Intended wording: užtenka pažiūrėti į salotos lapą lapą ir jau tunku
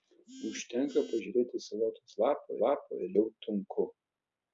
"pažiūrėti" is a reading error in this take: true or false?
false